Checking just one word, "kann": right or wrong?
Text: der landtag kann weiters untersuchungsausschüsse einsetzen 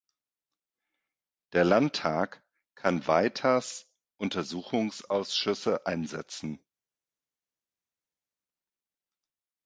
right